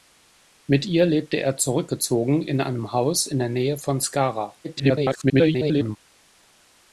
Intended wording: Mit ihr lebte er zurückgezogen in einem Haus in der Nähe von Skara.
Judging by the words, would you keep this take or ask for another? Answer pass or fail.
fail